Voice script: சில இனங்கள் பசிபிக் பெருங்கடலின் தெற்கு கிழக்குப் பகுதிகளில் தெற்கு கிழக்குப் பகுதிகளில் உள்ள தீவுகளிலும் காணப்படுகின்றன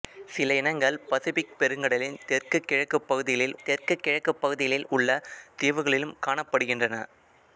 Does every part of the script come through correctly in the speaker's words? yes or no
yes